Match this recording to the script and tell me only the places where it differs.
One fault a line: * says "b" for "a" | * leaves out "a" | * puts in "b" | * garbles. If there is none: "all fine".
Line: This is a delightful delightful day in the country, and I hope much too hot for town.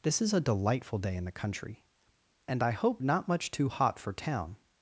* leaves out "delightful"
* puts in "not"